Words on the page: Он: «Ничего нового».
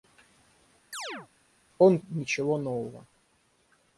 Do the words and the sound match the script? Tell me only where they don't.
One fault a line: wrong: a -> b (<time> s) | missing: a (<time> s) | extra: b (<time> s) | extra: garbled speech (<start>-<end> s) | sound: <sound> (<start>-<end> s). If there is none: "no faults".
sound: chirp (0.9-1.3 s)